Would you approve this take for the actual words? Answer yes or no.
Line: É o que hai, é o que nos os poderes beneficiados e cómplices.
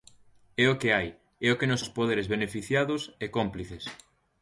yes